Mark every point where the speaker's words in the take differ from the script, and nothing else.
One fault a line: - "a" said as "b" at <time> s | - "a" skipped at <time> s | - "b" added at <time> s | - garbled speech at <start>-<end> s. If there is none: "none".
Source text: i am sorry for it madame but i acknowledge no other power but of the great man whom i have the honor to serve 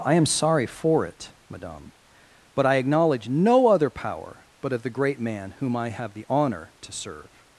none